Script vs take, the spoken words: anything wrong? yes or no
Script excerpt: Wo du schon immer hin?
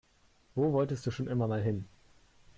yes